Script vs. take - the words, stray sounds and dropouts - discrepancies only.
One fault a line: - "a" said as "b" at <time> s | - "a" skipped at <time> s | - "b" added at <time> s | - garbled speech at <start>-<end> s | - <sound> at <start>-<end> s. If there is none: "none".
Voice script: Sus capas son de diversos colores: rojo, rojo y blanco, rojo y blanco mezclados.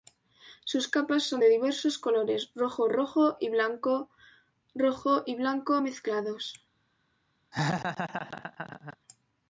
- laugh at 7.5-9.0 s